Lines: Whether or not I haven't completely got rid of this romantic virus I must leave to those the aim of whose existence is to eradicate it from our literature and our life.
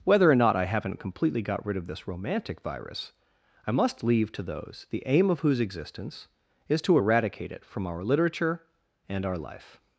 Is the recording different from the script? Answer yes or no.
no